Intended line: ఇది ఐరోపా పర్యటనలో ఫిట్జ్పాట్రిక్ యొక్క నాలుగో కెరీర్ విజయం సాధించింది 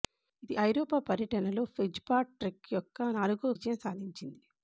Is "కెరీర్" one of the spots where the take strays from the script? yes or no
yes